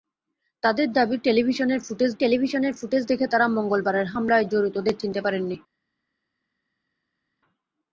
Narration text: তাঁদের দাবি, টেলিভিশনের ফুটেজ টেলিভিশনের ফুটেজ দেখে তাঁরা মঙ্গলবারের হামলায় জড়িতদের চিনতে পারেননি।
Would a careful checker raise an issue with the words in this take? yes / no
no